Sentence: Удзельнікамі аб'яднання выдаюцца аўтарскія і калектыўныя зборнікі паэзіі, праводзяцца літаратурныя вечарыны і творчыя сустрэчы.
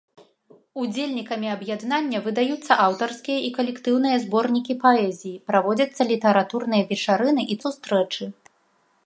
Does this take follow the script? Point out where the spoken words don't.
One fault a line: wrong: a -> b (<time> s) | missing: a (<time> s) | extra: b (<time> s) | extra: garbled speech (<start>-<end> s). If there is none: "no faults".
missing: творчыя (7.6 s)